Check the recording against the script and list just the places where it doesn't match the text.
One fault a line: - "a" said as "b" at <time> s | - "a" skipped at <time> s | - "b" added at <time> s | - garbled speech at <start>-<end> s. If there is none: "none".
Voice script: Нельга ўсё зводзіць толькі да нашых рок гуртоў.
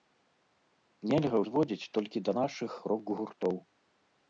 - "ўсё" skipped at 1.4 s